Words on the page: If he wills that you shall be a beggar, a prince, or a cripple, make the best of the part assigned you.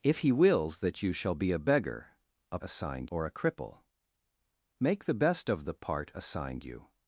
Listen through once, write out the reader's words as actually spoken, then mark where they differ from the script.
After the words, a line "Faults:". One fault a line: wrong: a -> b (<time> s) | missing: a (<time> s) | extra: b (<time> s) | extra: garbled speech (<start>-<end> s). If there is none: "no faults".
If he wills that you shall be a beggar, a assigned, or a cripple, make the best of the part assigned you.
Faults:
wrong: prince -> assigned (2.6 s)